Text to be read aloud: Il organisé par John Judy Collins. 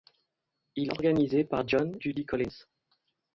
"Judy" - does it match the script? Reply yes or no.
yes